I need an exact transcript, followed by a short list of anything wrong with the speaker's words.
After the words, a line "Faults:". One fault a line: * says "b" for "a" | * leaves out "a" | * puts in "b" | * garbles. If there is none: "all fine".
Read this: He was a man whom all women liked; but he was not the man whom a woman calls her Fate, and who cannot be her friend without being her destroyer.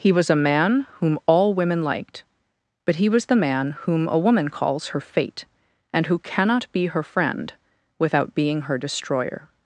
He was a man whom all women liked; but he was the man whom a woman calls her Fate, and who cannot be her friend without being her destroyer.
Faults:
* leaves out "not"